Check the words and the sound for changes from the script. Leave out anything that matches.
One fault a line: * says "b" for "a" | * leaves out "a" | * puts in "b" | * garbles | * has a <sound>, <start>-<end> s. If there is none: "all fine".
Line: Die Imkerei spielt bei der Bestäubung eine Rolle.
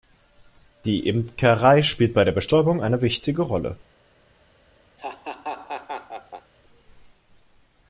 * puts in "wichtige"
* has a laugh, 5.0-6.5 s